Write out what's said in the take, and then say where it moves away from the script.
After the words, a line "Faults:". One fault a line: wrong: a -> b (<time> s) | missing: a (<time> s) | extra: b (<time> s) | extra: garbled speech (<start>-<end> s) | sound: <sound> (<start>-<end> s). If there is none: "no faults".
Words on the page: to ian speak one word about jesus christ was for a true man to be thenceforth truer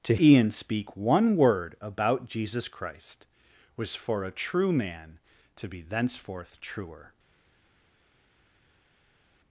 to ian speak one word about jesus christ was for a true man to be thenceforth truer
Faults:
no faults